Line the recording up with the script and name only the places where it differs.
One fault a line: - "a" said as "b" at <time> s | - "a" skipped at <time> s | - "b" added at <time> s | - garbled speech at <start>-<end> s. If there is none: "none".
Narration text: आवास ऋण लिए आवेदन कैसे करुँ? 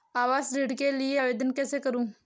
- "के" added at 0.8 s